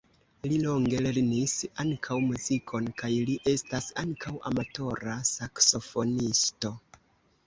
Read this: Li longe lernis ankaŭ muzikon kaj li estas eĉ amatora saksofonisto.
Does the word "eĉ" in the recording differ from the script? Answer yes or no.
yes